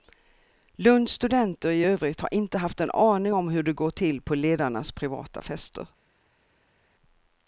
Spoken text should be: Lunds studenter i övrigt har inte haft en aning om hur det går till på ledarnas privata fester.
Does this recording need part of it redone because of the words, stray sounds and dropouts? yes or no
no